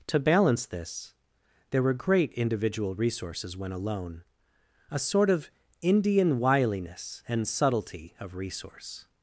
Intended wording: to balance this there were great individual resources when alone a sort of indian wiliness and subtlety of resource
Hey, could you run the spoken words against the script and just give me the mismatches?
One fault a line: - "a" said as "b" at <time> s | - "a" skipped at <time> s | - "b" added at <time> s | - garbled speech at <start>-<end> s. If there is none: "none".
none